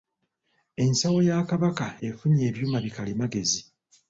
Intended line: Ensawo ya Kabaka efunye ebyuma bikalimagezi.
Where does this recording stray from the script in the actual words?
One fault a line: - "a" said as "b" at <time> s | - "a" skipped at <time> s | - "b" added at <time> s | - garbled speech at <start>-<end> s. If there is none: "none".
none